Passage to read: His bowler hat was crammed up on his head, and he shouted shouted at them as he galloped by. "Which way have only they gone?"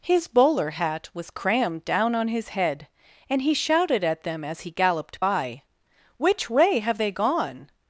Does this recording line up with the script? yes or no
no